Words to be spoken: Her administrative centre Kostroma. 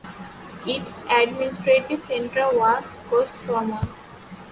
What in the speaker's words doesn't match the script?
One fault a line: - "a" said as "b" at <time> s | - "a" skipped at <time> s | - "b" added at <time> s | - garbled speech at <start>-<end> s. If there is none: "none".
- "Her" said as "Its" at 0.7 s
- "was" added at 2.6 s